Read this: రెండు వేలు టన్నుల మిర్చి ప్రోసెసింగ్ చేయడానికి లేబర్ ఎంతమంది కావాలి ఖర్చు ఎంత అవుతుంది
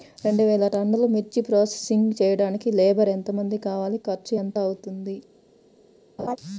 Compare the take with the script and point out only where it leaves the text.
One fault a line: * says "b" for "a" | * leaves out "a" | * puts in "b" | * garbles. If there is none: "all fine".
all fine